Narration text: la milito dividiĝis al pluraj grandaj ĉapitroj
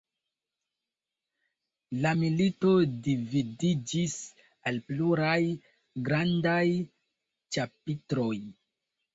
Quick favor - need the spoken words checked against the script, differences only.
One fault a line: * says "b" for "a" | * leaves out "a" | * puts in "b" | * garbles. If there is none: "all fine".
all fine